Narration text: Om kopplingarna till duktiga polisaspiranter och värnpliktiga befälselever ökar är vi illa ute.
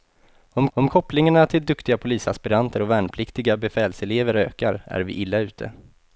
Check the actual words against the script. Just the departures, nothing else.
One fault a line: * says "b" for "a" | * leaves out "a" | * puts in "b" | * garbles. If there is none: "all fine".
* puts in "om"